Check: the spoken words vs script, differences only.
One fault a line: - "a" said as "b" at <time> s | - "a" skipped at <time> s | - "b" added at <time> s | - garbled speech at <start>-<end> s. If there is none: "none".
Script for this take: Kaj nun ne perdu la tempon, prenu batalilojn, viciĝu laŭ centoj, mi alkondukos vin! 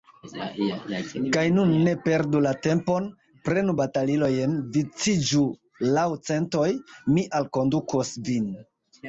none